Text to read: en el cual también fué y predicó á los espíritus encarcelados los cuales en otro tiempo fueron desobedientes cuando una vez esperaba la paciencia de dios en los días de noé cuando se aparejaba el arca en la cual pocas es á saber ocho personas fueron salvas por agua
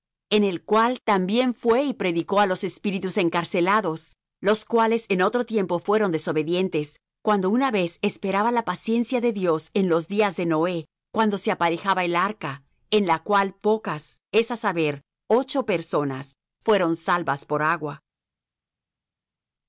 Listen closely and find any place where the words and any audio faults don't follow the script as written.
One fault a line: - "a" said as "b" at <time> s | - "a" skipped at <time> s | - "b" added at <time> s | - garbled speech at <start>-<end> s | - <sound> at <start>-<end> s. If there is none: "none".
none